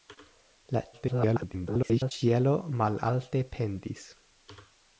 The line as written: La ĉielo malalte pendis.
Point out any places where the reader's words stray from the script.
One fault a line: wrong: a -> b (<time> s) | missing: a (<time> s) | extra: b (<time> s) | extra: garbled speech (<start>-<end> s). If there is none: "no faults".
extra: garbled speech (0.9-2.1 s)